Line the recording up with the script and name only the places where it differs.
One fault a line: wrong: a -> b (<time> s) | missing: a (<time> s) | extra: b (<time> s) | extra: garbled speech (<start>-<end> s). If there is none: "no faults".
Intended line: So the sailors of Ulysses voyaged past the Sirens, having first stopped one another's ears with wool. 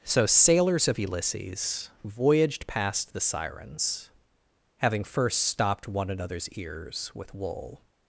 missing: the (0.2 s)